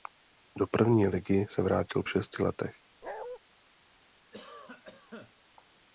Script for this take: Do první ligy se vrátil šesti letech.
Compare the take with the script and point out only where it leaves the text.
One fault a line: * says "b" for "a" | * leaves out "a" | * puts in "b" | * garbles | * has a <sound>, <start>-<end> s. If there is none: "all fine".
* has a bark, 3.0-3.4 s
* has a cough, 4.3-5.4 s